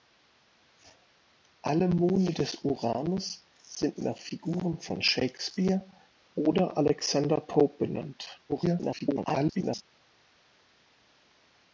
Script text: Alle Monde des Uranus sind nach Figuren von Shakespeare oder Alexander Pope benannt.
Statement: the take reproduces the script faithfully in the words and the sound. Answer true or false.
false